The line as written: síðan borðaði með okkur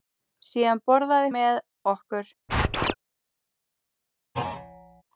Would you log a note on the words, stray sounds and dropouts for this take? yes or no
yes